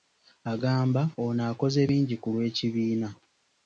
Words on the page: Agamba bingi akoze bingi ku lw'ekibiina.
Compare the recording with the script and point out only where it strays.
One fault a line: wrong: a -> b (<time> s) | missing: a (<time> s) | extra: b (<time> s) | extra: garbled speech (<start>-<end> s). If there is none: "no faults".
wrong: bingi -> ono (1.2 s)